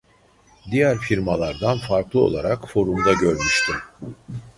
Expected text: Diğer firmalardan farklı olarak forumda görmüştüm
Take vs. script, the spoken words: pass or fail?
pass